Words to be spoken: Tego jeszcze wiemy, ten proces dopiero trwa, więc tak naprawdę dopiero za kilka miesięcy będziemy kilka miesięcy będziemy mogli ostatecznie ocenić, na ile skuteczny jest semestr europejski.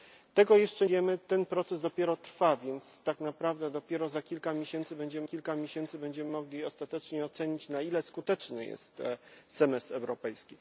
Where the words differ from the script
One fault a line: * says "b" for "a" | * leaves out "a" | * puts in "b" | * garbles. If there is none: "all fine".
all fine